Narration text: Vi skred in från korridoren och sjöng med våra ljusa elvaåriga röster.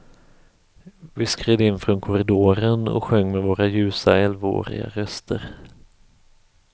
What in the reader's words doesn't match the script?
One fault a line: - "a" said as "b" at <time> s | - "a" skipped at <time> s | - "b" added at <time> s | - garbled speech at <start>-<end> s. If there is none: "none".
none